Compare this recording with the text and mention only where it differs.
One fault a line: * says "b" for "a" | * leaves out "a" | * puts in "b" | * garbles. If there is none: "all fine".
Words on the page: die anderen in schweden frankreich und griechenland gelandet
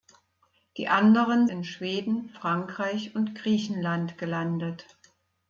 all fine